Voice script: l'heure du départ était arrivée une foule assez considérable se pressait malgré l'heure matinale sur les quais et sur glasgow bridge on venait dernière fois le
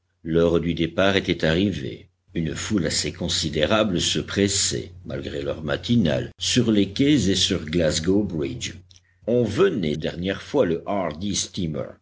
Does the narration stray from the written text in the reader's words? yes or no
no